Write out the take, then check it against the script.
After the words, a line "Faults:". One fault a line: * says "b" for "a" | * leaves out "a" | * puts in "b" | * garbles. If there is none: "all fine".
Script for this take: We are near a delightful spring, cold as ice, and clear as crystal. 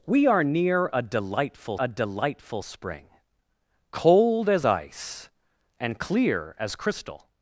We are near a delightful a delightful spring, cold as ice, and clear as crystal.
Faults:
* puts in "a delightful"